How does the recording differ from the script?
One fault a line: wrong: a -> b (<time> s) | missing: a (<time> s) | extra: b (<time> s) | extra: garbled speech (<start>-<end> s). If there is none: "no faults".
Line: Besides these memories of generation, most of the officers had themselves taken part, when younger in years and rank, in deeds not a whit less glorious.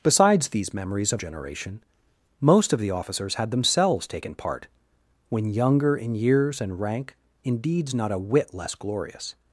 no faults